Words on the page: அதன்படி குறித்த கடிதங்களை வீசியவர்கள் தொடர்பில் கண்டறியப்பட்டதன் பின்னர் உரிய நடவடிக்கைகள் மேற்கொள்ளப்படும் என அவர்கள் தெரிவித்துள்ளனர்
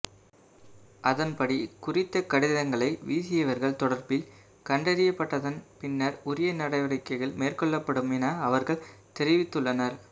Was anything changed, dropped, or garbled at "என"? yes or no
no